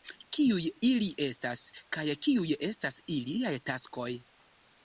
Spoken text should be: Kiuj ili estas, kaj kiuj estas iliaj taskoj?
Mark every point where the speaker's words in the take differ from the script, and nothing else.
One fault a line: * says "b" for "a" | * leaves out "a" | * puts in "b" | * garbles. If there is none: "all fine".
all fine